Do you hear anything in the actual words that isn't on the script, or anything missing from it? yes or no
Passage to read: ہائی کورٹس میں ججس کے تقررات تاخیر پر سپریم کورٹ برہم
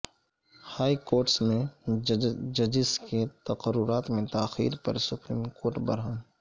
yes